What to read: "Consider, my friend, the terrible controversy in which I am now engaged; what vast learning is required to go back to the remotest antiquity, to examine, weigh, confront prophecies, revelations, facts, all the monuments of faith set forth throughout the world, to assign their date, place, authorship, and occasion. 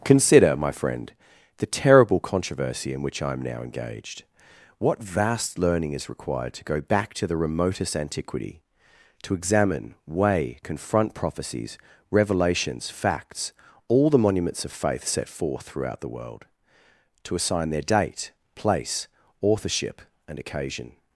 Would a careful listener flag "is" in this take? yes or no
no